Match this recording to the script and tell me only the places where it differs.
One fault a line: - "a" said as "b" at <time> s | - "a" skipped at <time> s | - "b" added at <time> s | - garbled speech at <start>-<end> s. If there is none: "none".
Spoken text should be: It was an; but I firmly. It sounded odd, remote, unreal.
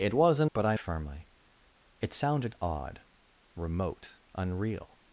none